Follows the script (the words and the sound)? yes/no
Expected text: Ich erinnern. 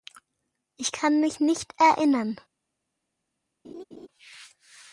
no